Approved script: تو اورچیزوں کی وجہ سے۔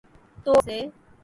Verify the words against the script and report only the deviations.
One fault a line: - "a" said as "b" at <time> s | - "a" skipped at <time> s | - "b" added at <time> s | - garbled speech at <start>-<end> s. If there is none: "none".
- "اورچیزوں کی وجہ" skipped at 0.5 s